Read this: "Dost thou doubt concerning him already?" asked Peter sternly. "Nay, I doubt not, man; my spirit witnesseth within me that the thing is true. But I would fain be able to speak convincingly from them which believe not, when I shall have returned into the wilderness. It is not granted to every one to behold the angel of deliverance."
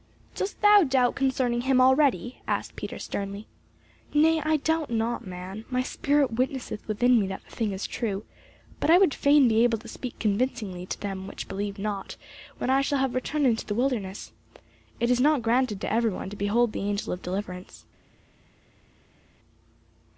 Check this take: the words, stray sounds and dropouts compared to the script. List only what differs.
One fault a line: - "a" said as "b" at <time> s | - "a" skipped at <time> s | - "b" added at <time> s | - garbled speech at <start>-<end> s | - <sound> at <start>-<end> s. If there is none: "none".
- "from" said as "to" at 10.9 s